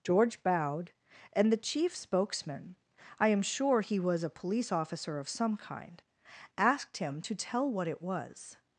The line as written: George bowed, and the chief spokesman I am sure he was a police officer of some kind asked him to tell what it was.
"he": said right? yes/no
yes